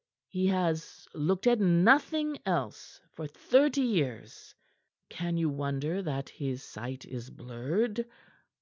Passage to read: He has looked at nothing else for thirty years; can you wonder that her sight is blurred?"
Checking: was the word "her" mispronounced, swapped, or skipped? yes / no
yes